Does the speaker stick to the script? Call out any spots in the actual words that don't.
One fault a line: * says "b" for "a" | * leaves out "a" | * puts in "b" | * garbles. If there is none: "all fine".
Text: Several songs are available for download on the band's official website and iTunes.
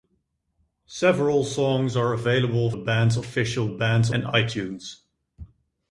* leaves out "for download on"
* says "band's" for "website"